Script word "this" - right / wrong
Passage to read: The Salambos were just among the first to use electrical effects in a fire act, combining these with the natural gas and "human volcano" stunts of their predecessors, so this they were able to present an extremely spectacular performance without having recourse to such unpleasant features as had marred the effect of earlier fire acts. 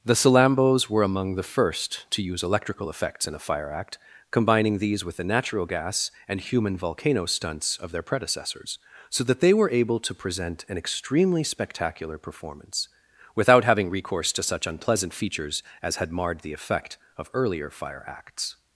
wrong